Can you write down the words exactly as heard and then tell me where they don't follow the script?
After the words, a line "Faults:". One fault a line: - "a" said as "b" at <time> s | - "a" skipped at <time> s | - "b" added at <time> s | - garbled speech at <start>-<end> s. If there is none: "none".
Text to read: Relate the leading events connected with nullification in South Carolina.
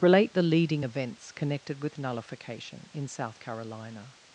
Relate the leading events connected with nullification in South Carolina.
Faults:
none